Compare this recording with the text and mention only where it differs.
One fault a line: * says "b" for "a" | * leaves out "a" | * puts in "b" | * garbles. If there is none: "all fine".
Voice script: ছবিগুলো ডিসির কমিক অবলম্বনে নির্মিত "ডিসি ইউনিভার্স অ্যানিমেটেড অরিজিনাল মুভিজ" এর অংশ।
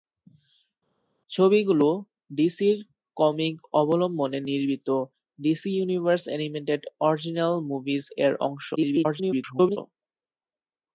* garbles